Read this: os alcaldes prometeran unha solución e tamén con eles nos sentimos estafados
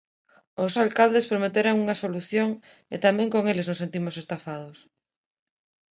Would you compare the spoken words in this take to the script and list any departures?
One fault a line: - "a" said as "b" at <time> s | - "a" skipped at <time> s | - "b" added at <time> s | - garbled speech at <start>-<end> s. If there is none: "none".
none